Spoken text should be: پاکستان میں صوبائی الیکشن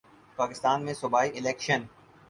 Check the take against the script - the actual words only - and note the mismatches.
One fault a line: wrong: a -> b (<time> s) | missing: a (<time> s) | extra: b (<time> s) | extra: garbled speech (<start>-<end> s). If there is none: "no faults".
no faults